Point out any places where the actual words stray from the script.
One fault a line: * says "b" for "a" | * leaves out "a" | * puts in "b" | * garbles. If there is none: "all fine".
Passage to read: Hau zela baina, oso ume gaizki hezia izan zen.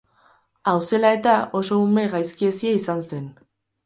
* says "eta" for "baina"